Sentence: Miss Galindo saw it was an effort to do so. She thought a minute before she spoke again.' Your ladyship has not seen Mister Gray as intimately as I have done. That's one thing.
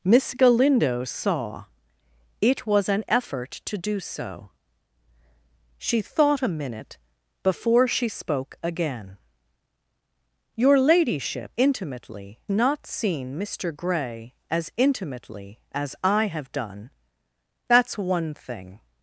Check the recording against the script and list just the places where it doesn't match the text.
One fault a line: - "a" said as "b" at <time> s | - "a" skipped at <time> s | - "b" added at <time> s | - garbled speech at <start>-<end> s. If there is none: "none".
- "has" said as "intimately" at 11.6 s